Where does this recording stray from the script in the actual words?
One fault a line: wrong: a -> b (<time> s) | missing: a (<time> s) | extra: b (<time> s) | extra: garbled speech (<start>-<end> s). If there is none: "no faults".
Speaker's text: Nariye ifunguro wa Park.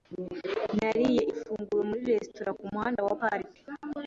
extra: muri resitora kumuhanda (1.9 s)